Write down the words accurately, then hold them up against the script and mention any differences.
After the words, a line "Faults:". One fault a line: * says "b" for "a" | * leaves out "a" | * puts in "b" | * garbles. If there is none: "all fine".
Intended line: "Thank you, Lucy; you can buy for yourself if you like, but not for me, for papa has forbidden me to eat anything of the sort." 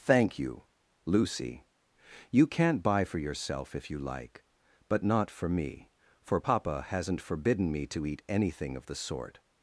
"Thank you, Lucy; you can't buy for yourself if you like, but not for me, for papa hasn't forbidden me to eat anything of the sort."
Faults:
* says "can't" for "can"
* says "hasn't" for "has"